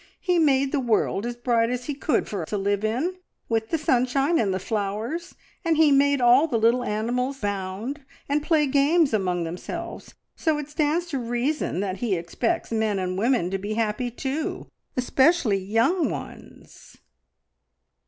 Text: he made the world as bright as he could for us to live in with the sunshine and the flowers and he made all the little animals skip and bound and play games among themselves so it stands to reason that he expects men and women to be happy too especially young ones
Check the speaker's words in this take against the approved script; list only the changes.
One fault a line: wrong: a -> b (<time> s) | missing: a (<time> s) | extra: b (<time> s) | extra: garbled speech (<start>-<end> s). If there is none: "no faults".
missing: us (2.5 s)
missing: skip and (7.4 s)